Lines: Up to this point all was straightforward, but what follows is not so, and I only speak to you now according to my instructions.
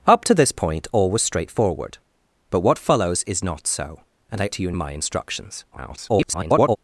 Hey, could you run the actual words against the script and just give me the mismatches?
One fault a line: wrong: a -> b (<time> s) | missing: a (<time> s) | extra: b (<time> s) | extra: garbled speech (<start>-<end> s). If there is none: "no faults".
missing: only speak (4.5 s)
missing: now according to (4.7 s)
extra: garbled speech (5.7-6.8 s)